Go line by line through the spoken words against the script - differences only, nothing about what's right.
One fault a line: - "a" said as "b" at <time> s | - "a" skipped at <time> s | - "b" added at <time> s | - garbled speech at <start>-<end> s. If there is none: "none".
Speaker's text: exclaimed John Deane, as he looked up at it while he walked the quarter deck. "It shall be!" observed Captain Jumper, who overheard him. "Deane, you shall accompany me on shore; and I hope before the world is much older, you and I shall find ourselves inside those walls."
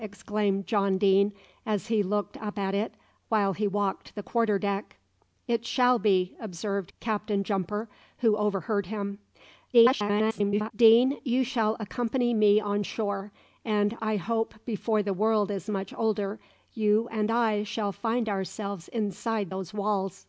- garbled speech at 9.7-10.7 s